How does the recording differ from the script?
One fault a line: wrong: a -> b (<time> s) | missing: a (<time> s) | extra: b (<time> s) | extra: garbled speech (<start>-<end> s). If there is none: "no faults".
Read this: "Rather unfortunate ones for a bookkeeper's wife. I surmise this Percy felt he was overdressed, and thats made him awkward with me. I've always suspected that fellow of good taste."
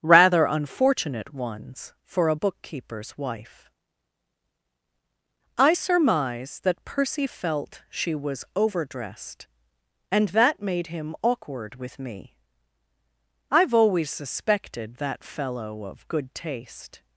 wrong: this -> that (6.6 s)
wrong: he -> she (7.9 s)
wrong: thats -> that (10.3 s)